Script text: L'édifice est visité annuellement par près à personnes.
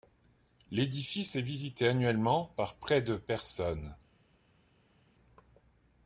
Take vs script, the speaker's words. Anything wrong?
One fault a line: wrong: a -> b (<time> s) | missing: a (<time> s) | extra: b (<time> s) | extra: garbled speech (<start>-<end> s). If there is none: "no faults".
wrong: à -> de (3.0 s)